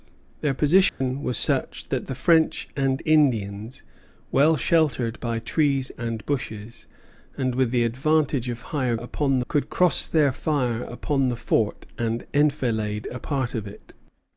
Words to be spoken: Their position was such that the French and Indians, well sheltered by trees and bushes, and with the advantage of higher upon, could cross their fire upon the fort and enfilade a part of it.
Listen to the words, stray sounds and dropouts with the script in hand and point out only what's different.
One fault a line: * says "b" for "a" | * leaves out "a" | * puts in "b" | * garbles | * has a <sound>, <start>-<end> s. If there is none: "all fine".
* has a dropout, 0.9-1.0 s